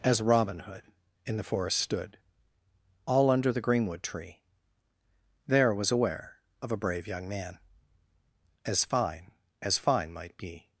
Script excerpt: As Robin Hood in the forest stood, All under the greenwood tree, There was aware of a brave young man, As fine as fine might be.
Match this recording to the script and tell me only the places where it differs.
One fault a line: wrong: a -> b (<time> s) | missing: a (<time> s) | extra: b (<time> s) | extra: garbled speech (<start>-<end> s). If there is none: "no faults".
no faults